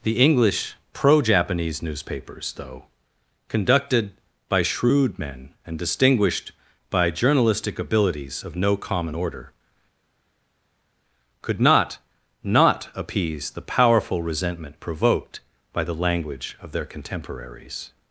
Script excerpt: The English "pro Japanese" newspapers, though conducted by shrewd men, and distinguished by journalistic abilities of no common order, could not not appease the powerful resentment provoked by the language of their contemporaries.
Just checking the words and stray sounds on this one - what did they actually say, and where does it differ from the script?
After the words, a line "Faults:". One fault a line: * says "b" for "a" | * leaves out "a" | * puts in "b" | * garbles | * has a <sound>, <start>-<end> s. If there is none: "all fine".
The English "pro Japanese" newspapers, though conducted by shrewd men, and distinguished by journalistic abilities of no common order, could not not appease the powerful resentment provoked by the language of their contemporaries.
Faults:
all fine